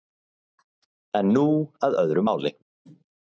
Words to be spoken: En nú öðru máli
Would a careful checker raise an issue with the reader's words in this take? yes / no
yes